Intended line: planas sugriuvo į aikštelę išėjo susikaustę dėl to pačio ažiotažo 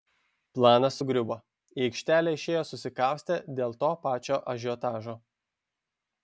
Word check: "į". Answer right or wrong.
right